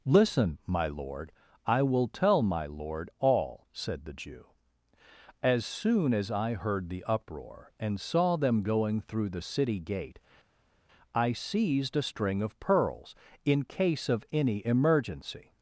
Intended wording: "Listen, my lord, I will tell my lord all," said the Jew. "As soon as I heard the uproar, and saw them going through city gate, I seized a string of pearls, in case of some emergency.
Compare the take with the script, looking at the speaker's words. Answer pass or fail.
fail